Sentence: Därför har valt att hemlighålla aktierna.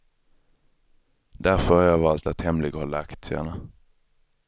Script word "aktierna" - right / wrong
right